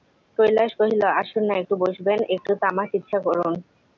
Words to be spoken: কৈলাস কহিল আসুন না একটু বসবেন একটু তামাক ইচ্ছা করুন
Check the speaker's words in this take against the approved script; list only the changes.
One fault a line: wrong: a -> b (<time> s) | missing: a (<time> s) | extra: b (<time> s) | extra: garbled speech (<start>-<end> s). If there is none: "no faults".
no faults